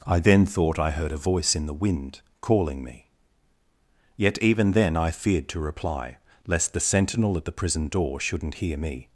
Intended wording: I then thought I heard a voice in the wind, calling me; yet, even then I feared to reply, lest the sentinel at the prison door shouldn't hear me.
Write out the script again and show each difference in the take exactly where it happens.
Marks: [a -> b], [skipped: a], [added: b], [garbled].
I then thought I heard a voice in the wind, calling me; yet, even then I feared to reply, lest the sentinel at the prison door shouldn't hear me.